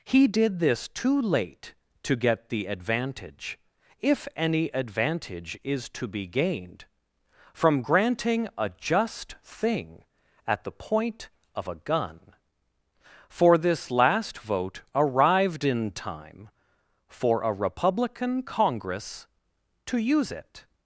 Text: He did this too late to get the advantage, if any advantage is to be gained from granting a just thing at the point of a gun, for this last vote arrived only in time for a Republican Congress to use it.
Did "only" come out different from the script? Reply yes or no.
yes